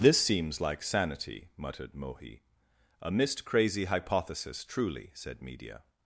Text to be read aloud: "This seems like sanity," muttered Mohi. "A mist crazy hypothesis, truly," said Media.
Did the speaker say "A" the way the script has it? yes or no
yes